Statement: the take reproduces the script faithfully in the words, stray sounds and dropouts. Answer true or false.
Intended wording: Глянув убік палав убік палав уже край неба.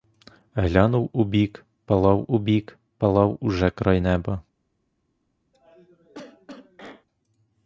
false